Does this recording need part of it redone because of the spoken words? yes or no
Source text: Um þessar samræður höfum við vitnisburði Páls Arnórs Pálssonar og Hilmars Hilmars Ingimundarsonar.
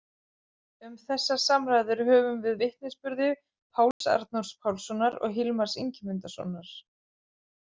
yes